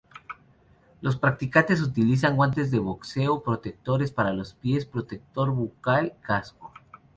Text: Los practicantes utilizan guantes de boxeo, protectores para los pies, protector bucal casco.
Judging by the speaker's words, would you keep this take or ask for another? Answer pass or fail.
pass